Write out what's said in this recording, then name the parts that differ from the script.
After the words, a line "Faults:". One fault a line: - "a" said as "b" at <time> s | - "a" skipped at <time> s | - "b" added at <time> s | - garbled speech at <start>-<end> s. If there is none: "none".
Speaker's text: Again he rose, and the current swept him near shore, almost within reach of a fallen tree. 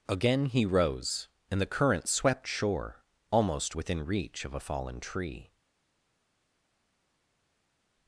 Again he rose, and the current swept shore, almost within reach of a fallen tree.
Faults:
- "him near" skipped at 2.5 s